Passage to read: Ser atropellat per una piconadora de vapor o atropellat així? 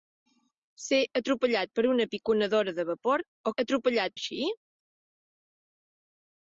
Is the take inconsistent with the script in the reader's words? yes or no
no